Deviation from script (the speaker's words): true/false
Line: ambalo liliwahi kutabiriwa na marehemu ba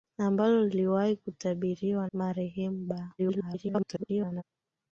true